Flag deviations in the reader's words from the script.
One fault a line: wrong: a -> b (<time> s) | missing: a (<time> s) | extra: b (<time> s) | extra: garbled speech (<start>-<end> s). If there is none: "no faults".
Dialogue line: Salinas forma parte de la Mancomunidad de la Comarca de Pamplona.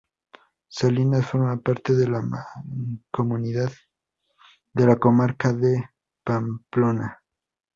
no faults